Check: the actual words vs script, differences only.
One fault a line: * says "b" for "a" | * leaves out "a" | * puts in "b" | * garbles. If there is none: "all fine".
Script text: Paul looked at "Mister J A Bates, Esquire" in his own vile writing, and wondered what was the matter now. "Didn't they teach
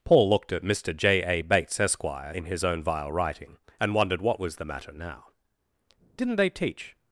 all fine